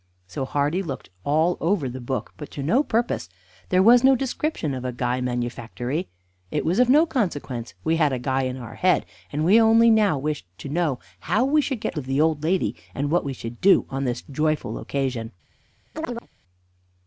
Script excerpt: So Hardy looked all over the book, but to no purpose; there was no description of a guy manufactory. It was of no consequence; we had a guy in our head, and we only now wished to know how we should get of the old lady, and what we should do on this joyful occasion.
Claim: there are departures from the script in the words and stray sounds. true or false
true